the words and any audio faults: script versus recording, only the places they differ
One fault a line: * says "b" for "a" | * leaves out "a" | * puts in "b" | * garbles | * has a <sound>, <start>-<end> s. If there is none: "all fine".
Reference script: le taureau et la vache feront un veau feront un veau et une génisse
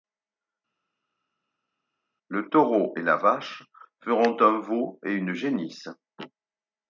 * leaves out "feront un veau"